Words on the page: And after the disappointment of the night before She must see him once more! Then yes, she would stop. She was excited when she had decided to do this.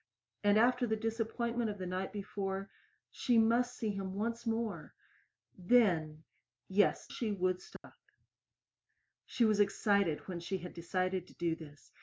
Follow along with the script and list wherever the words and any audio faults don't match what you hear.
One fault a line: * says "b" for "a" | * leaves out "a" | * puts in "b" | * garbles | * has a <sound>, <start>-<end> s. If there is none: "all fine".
* has a dropout, 7.8-7.8 s